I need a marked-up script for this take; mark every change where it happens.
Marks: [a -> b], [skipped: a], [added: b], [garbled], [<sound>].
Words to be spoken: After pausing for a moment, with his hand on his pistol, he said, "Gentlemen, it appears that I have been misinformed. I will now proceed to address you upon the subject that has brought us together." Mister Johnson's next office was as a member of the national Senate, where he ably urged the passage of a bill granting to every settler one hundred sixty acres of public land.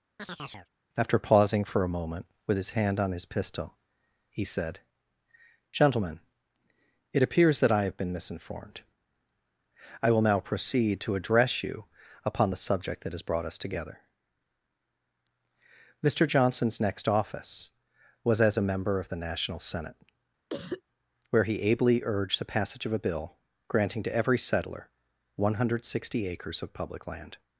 [chirp] After pausing for a moment, with his hand on his pistol, he said, "Gentlemen, it appears that I have been misinformed. I will now proceed to address you upon the subject that has brought us together." Mister Johnson's next office was as a member of the national Senate, [cough] where he ably urged the passage of a bill granting to every settler one hundred sixty acres of public land.